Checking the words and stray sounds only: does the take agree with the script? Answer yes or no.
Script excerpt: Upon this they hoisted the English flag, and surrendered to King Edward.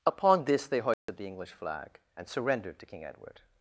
no